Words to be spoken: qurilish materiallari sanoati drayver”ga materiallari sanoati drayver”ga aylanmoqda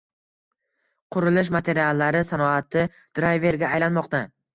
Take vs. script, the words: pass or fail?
fail